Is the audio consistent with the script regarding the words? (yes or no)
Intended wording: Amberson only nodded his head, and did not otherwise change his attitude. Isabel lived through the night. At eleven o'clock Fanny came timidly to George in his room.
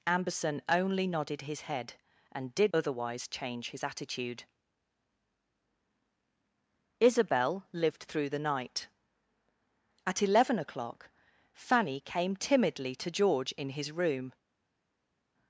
no